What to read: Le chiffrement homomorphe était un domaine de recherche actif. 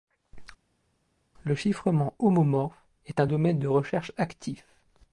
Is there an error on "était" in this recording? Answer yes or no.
yes